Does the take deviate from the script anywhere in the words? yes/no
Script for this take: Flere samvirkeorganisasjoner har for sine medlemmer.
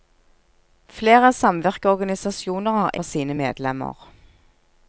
no